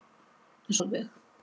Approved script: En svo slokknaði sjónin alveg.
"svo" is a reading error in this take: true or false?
true